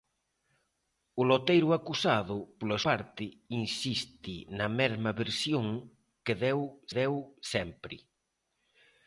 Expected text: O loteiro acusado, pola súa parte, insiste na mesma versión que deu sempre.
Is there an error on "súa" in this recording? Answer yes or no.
yes